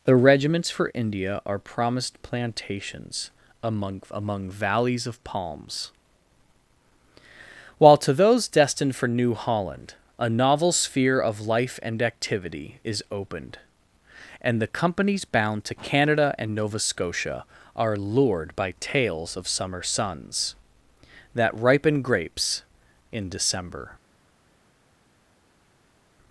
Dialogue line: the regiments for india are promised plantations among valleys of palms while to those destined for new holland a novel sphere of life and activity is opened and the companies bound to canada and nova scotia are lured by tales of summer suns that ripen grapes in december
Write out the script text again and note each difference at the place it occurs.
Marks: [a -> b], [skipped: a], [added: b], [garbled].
the regiments for india are promised plantations among [added: among] valleys of palms while to those destined for new holland a novel sphere of life and activity is opened and the companies bound to canada and nova scotia are lured by tales of summer suns that ripen grapes in december